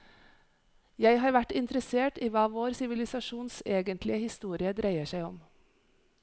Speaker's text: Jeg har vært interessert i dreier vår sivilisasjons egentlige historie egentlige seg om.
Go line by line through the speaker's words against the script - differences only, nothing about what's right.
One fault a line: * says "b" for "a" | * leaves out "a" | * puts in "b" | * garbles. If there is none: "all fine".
* says "hva" for "dreier"
* says "dreier" for "egentlige"